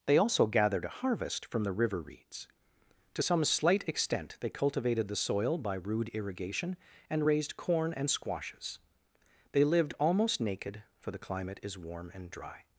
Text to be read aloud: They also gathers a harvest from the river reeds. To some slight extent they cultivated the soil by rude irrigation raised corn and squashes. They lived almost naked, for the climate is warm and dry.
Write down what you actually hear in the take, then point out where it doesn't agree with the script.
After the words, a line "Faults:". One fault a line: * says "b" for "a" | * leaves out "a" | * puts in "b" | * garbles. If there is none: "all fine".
They also gathered a harvest from the river reeds. To some slight extent they cultivated the soil by rude irrigation and raised corn and squashes. They lived almost naked, for the climate is warm and dry.
Faults:
* says "gathered" for "gathers"
* puts in "and"